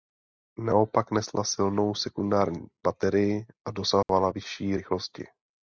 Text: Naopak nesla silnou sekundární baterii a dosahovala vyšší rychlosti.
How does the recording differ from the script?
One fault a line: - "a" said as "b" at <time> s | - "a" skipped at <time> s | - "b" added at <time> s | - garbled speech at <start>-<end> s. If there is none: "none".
none